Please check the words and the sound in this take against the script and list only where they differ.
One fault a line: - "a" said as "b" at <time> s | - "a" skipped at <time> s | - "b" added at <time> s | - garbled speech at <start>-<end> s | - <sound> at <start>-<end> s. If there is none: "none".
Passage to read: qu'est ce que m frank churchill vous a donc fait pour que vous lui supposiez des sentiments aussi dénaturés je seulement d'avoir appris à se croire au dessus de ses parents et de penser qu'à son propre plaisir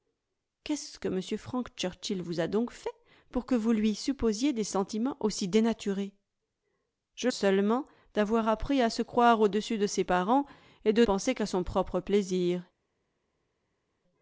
none